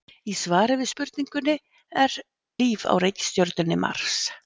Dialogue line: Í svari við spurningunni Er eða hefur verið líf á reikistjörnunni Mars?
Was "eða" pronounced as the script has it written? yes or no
no